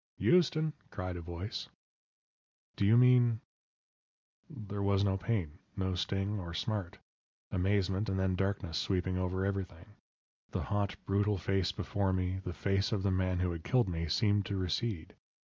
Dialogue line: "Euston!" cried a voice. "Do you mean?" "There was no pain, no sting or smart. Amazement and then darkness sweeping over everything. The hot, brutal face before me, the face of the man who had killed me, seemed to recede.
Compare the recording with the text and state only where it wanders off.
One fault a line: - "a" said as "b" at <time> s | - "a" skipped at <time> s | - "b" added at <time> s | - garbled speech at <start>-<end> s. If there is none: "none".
none